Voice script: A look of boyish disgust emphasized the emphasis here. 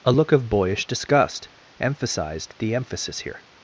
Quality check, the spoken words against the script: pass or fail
pass